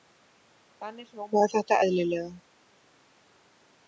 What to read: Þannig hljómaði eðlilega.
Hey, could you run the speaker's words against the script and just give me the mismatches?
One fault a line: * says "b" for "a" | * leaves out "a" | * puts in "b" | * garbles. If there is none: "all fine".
* puts in "þetta"